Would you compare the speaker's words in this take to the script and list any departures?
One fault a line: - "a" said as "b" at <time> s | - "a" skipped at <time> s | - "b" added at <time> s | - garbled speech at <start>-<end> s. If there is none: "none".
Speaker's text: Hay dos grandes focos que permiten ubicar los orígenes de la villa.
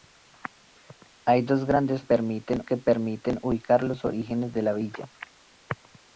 - "focos" said as "permiten" at 2.0 s